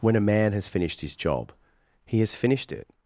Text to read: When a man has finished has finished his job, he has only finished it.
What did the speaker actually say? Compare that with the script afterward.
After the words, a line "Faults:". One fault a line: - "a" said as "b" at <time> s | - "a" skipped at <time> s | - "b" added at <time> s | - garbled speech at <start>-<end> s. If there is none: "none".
When a man has finished his job, he has finished it.
Faults:
- "has finished" skipped at 1.0 s
- "only" skipped at 2.3 s